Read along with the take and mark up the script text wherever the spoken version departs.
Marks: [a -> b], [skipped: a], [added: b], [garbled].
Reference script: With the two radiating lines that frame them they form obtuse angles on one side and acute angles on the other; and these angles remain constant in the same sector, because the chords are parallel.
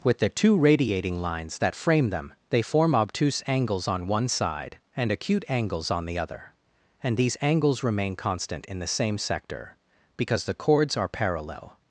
With the two radiating lines that frame them they form obtuse angles on one side and acute angles on the other; and these angles remain constant in the same sector, because the chords are parallel.